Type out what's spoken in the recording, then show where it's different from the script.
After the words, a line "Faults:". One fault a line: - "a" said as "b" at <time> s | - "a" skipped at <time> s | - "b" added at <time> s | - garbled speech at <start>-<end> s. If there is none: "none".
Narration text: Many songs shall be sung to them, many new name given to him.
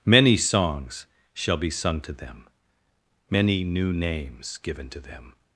Many songs shall be sung to them, many new names given to them.
Faults:
- "name" said as "names" at 3.9 s
- "him" said as "them" at 5.0 s